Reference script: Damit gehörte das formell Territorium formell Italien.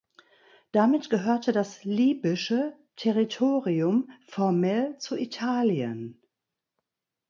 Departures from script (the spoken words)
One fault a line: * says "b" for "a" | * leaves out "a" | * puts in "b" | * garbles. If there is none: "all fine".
* says "libysche" for "formell"
* puts in "zu"